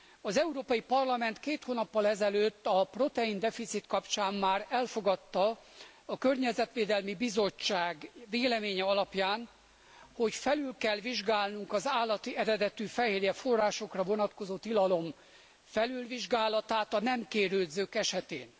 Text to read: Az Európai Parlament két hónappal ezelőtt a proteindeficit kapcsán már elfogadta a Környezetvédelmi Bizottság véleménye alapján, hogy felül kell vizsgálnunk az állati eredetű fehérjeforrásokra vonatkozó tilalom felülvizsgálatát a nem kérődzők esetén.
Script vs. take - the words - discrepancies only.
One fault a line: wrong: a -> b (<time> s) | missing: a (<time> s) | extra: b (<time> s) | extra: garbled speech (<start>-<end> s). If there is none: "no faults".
no faults